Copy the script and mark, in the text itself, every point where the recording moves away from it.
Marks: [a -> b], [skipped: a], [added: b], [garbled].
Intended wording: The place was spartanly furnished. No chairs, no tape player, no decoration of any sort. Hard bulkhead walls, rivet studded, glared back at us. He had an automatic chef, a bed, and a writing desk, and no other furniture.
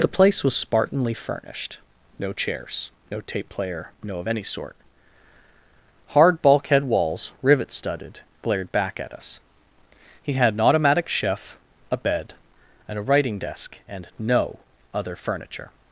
The place was spartanly furnished. No chairs, no tape player, no [skipped: decoration] of any sort. Hard bulkhead walls, rivet studded, glared back at us. He had an automatic chef, a bed, and a writing desk, and no other furniture.